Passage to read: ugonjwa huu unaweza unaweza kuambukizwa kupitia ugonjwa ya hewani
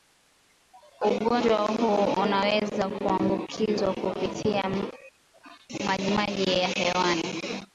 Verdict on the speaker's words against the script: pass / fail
fail